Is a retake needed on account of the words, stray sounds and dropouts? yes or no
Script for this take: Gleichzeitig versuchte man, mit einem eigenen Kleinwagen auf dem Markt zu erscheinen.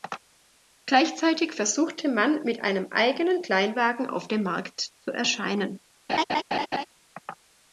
yes